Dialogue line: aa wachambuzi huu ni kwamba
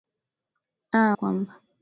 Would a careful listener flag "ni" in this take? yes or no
yes